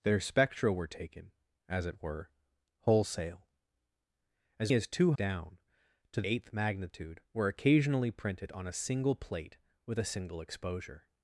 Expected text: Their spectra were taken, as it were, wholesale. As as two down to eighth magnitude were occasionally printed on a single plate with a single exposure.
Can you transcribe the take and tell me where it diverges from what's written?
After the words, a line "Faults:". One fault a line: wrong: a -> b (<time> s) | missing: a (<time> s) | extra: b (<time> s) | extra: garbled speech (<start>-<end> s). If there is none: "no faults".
Their spectra were taken, as it were, wholesale. As as two down to eighth magnitude were occasionally printed on a single plate with a single exposure.
Faults:
no faults